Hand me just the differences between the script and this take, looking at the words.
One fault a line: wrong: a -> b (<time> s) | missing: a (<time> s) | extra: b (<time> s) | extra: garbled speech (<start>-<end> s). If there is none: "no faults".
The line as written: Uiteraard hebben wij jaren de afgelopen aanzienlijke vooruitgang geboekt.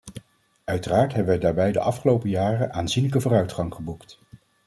wrong: jaren -> daarbij (1.4 s)
extra: jaren (2.3 s)